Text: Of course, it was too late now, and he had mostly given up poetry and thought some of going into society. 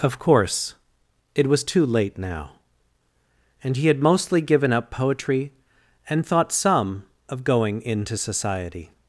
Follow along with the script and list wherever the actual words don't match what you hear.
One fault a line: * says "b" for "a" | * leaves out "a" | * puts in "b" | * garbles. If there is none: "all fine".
all fine